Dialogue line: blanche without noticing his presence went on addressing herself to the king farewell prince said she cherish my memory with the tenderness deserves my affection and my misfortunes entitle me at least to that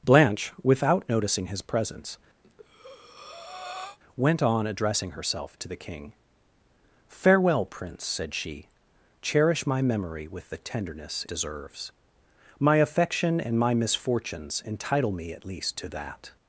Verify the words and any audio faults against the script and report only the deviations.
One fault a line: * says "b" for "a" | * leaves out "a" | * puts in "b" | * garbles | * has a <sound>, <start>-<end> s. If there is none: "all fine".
* has a breath, 2.4-4.0 s